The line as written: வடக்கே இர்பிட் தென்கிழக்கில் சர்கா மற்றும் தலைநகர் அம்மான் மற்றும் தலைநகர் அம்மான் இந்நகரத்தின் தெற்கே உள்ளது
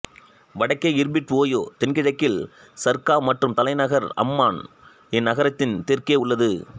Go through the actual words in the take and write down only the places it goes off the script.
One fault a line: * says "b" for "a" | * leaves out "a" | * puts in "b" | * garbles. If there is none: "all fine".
* puts in "ஓயோ"
* leaves out "மற்றும் தலைநகர் அம்மான்"